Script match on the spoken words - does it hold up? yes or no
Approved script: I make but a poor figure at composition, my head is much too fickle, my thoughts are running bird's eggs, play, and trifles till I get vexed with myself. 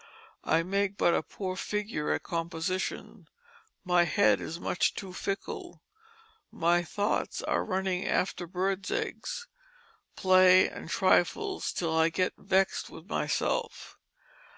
no